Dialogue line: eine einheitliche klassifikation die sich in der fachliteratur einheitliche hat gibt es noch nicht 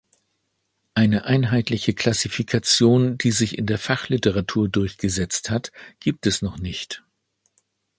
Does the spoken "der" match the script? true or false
true